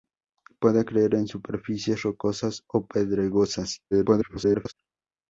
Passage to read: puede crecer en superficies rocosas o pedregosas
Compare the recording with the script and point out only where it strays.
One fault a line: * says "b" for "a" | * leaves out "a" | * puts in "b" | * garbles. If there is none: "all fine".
* garbles